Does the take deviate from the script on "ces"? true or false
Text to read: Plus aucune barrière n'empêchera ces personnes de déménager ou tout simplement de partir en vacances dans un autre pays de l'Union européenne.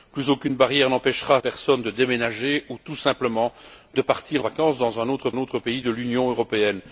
true